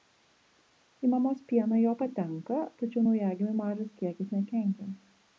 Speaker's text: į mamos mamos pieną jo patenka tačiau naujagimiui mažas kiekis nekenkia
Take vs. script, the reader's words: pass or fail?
fail